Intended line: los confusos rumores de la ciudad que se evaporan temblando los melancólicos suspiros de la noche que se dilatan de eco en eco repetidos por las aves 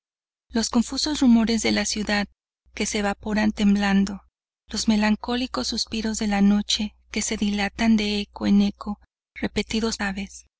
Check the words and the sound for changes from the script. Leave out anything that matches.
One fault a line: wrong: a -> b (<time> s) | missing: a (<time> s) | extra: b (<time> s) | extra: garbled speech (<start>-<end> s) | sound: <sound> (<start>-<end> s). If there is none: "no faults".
missing: por las (10.0 s)